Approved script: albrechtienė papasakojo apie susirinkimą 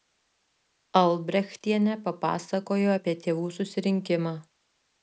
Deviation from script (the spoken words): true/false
true